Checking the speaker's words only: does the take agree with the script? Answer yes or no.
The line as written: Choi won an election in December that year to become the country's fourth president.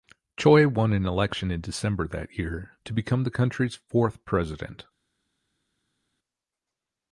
yes